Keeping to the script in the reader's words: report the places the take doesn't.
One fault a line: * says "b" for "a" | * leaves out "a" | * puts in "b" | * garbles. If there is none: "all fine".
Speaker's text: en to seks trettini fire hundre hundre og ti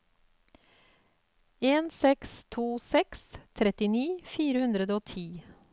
* puts in "seks"
* leaves out "hundre"